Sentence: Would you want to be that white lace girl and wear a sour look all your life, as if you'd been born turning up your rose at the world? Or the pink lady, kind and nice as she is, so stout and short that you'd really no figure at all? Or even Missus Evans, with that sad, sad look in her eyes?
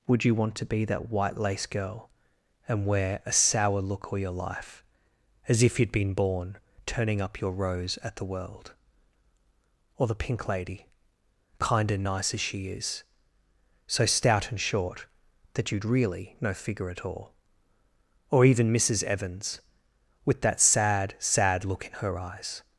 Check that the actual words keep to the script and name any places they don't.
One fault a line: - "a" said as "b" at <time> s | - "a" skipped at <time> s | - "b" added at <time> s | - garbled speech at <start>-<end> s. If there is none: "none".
none